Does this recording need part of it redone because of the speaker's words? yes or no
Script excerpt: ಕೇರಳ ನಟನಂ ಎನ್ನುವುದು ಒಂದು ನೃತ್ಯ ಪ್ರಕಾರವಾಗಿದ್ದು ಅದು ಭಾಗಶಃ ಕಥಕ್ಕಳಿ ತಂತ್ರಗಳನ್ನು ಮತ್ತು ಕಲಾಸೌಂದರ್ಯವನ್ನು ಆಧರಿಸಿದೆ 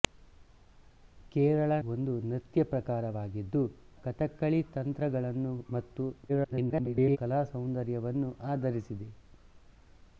yes